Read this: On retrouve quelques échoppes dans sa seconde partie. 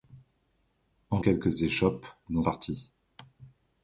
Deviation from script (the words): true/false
true